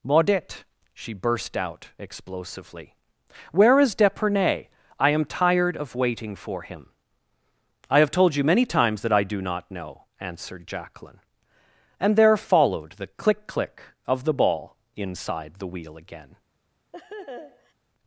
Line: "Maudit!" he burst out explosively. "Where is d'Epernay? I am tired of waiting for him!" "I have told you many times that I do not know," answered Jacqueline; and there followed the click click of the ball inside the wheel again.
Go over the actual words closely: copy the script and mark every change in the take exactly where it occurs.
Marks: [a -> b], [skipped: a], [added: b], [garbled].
"Maudit!" [he -> she] burst out explosively. "Where is d'Epernay? I am tired of waiting for him!" "I have told you many times that I do not know," answered Jacqueline; and there followed the click click of the ball inside the wheel again.